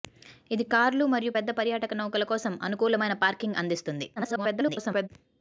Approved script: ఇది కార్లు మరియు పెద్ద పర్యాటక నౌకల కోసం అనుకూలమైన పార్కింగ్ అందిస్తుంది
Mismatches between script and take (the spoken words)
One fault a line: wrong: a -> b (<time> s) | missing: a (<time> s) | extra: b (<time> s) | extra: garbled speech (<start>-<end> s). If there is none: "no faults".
extra: garbled speech (4.2-5.1 s)